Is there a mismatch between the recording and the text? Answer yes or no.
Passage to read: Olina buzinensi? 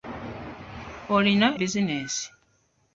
no